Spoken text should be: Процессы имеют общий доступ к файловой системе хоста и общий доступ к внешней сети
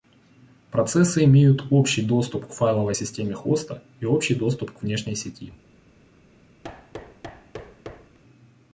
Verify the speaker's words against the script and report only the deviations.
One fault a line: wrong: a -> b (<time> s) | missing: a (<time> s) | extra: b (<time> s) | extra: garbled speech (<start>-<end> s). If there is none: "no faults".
no faults